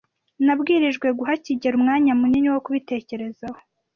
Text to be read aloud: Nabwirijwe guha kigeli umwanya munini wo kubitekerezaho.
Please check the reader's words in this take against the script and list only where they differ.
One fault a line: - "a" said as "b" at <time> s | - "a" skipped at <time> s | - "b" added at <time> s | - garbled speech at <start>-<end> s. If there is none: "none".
none